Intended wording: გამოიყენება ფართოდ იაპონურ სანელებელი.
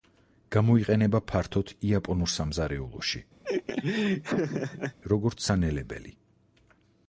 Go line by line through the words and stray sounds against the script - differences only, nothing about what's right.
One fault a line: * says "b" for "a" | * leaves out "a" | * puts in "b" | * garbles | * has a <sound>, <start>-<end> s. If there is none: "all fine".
* puts in "სამზარეულოში როგორც"
* has a laugh, 3.4-5.0 s